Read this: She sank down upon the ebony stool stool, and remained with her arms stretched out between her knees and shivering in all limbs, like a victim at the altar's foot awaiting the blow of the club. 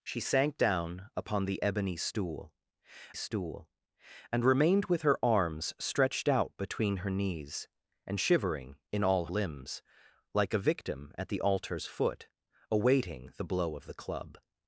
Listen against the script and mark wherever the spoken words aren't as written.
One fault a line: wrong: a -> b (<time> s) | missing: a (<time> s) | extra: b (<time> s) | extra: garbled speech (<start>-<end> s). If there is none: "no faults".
no faults